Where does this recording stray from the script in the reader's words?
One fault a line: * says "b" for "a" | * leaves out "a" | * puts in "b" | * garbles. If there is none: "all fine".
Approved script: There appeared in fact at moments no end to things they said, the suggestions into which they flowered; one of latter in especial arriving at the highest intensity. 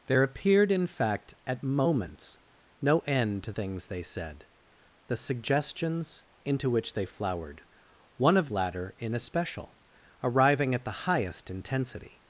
all fine